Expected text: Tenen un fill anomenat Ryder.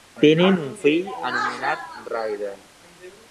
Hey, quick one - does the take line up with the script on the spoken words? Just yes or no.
yes